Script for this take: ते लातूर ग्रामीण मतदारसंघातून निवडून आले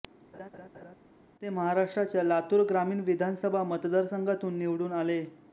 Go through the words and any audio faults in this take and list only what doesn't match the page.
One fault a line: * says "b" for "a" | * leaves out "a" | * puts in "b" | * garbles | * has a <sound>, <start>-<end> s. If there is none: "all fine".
* has a laugh, 0.3-1.0 s
* puts in "महाराष्ट्राच्या"
* puts in "विधानसभा"